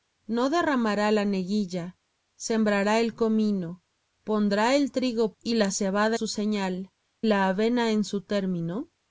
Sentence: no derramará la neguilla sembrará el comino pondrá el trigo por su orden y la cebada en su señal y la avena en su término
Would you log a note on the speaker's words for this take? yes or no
yes